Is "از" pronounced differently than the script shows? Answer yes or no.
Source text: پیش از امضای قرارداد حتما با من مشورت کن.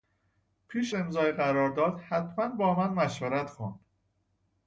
yes